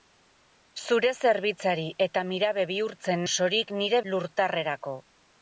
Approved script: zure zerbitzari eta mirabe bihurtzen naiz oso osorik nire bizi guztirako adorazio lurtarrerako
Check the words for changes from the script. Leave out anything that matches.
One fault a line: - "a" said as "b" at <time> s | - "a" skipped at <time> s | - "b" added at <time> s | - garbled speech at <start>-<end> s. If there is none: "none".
- "naiz oso" skipped at 3.2 s
- "bizi guztirako adorazio" skipped at 4.0 s